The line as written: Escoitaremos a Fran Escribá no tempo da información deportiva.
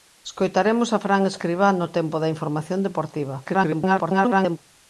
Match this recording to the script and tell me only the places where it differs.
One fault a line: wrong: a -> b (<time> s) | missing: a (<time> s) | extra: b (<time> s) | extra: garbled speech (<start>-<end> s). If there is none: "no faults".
extra: garbled speech (3.4-4.6 s)